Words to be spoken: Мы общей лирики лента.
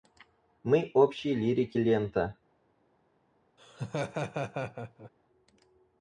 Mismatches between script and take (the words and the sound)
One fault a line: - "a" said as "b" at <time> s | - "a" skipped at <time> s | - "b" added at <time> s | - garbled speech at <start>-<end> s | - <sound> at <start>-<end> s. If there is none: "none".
- laugh at 3.6-5.1 s